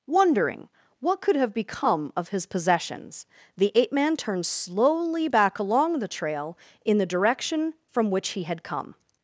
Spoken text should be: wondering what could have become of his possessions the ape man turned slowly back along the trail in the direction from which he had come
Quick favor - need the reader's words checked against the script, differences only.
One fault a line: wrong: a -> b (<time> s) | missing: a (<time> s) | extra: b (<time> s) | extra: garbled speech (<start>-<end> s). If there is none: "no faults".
no faults